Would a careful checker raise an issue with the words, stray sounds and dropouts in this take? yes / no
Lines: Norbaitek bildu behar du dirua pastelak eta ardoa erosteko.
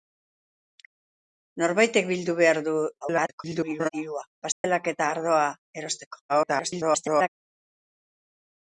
yes